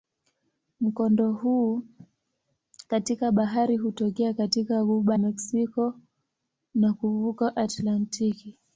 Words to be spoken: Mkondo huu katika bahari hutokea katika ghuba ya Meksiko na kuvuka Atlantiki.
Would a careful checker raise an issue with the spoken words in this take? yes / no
yes